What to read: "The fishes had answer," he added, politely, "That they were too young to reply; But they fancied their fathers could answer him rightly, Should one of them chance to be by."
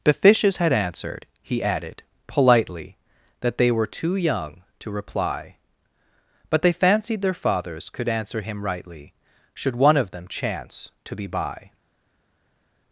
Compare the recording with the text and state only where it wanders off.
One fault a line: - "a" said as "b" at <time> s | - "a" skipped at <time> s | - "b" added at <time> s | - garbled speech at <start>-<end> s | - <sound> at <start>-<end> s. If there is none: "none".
- "answer" said as "answered" at 0.7 s